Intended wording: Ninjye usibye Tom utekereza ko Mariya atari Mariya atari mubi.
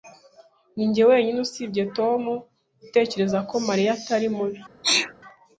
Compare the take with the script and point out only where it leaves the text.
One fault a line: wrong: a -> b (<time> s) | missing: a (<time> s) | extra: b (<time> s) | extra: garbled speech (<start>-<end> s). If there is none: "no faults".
extra: wenyine (1.1 s)
missing: Mariya atari (4.3 s)